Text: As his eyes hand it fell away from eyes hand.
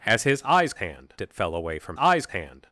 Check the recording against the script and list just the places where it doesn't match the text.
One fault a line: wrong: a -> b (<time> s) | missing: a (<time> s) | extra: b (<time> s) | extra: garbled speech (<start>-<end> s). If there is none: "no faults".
no faults